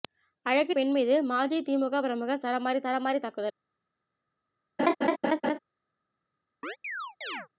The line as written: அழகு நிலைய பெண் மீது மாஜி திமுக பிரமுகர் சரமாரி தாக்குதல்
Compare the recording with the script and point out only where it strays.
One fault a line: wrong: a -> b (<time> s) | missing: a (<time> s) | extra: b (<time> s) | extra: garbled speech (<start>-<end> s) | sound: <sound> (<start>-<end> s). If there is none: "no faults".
missing: நிலைய (0.7 s)
extra: சரமாரி (2.8 s)
sound: laugh (4.8-5.6 s)
sound: chirp (6.6-7.5 s)